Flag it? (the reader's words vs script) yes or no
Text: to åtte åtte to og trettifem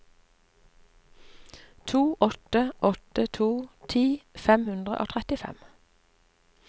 yes